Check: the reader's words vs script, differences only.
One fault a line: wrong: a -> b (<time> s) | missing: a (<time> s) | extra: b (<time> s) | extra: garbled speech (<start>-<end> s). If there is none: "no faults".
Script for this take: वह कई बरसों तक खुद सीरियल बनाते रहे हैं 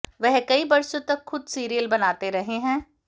no faults